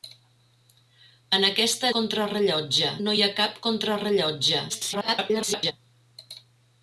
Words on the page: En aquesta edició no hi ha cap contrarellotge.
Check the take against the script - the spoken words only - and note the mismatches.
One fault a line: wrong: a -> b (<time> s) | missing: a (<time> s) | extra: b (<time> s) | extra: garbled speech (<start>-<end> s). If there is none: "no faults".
wrong: edició -> contrarellotge (2.0 s)
extra: garbled speech (4.7-5.7 s)